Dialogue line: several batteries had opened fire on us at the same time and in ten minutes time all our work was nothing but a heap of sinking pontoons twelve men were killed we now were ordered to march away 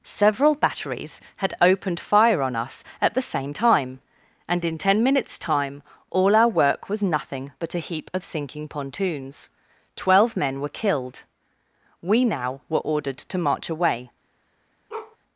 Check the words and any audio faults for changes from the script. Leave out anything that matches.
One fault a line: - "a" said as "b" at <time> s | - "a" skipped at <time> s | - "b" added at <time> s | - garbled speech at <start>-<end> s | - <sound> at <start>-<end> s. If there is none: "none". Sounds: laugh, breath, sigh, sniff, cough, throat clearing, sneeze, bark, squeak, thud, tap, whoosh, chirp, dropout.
- bark at 14.9-15.2 s